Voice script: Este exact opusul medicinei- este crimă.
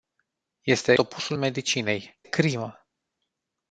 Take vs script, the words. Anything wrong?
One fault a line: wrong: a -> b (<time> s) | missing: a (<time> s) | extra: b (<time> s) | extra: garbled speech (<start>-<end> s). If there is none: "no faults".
missing: exact (0.9 s)
missing: este (2.2 s)